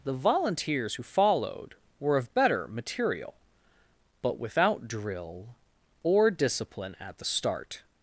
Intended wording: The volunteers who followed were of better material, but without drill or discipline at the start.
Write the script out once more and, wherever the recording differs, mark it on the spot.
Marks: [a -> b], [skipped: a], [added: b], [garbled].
The volunteers who followed were of better material, but without drill or discipline at the start.